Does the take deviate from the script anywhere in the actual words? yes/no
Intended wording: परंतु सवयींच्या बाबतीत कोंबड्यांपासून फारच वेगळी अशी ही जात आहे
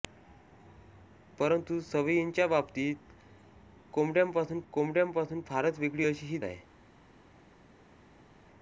yes